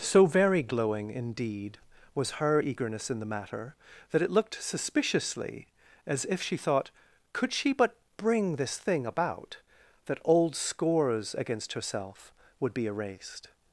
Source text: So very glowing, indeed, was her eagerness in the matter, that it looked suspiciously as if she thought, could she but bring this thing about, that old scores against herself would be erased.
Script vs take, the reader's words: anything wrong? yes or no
no